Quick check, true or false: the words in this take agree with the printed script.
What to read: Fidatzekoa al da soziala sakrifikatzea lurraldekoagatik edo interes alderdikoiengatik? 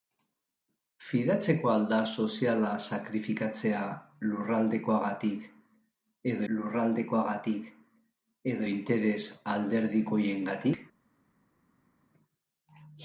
false